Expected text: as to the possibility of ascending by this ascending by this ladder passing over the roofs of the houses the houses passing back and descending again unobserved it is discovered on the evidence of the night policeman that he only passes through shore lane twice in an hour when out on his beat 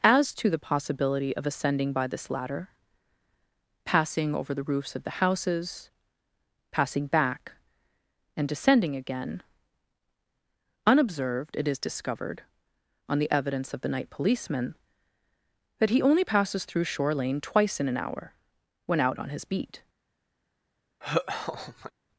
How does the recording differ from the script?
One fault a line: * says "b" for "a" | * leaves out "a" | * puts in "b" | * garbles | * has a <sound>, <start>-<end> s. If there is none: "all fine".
* leaves out "ascending by this"
* leaves out "the houses"
* has a laugh, 21.0-21.9 s